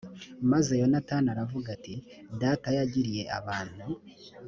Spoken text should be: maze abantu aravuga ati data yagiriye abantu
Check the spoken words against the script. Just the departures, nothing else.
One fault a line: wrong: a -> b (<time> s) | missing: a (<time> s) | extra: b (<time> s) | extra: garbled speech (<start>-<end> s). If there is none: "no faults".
wrong: abantu -> yonatani (0.8 s)